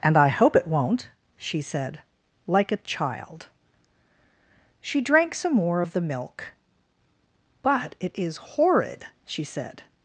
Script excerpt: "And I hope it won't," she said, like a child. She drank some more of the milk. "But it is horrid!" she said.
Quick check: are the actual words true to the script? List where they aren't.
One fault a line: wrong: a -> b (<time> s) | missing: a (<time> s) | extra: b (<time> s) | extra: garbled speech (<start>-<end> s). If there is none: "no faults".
no faults